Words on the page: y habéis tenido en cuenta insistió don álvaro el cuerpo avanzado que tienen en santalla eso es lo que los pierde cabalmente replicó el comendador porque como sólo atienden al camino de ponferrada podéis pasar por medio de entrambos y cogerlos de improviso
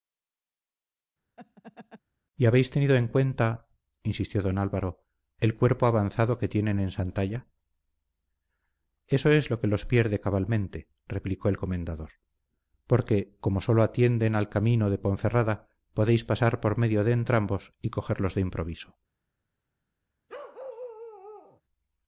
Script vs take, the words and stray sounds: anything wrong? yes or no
yes